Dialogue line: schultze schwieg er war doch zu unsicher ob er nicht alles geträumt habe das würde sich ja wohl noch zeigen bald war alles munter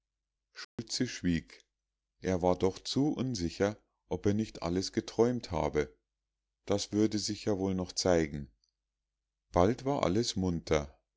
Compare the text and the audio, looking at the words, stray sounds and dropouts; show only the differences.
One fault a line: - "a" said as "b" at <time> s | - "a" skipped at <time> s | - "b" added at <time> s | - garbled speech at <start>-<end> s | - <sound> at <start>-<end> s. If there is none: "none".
- dropout at 0.6-0.8 s